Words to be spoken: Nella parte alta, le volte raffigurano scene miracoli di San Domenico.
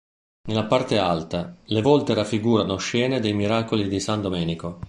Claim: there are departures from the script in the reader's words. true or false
true